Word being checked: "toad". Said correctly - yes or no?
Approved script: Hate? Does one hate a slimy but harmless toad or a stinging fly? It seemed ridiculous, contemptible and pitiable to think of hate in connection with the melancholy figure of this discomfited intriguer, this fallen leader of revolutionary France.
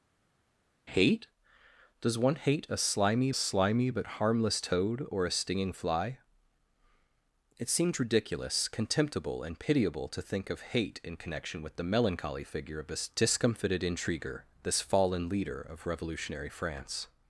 yes